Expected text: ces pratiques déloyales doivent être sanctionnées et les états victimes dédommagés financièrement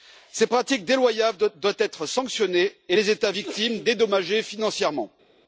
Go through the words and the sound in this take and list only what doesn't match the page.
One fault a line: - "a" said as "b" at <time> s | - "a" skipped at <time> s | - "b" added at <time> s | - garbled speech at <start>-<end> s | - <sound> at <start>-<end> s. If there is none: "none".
none